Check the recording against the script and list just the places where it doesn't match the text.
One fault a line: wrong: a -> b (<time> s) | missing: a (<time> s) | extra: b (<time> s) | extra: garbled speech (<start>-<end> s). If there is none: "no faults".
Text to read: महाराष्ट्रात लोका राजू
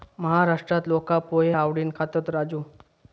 extra: पोहे आवडीन खातत (1.2 s)